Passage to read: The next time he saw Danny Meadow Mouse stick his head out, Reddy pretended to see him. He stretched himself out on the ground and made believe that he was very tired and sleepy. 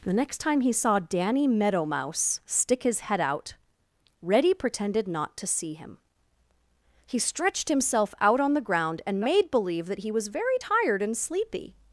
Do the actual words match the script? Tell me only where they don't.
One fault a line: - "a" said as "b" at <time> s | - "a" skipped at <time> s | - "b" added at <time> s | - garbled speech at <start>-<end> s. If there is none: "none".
- "not" added at 5.1 s